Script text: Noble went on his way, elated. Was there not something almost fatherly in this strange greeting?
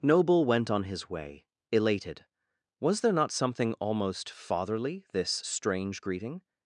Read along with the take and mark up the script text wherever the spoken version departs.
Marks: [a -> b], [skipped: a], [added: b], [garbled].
Noble went on his way, elated. Was there not something almost fatherly [skipped: in] this strange greeting?